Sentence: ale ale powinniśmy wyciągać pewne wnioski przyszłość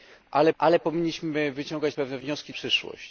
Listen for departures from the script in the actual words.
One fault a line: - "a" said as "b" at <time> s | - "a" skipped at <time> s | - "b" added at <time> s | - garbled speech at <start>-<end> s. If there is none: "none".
none